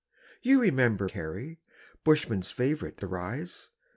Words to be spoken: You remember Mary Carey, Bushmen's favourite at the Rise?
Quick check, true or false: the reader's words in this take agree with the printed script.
false